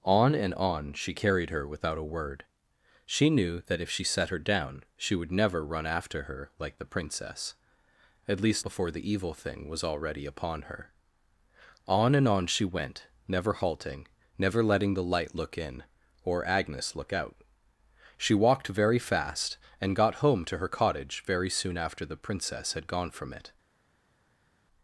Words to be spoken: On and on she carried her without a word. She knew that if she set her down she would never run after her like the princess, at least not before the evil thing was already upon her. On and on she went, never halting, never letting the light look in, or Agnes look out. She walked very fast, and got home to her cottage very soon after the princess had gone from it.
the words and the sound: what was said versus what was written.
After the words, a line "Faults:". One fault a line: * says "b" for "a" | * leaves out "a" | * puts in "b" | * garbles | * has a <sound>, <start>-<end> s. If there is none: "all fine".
On and on she carried her without a word. She knew that if she set her down she would never run after her like the princess, at least before the evil thing was already upon her. On and on she went, never halting, never letting the light look in, or Agnes look out. She walked very fast, and got home to her cottage very soon after the princess had gone from it.
Faults:
* leaves out "not"